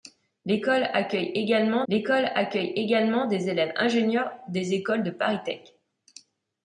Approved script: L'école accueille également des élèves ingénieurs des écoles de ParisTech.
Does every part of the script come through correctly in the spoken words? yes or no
no